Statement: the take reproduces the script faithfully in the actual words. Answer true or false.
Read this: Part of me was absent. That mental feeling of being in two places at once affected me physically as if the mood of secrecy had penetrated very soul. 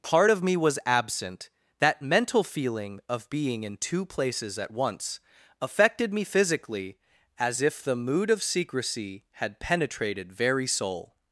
true